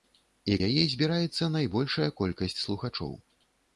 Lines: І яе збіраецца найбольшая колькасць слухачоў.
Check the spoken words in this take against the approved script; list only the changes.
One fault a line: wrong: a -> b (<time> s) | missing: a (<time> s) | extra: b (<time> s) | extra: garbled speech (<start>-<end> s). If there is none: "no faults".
no faults